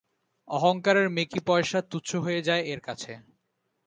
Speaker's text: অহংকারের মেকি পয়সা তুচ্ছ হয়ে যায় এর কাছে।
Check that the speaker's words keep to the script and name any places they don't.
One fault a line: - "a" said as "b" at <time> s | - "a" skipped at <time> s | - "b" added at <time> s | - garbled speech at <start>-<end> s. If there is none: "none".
none